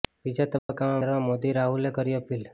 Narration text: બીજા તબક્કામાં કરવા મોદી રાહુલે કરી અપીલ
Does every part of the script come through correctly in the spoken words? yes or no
yes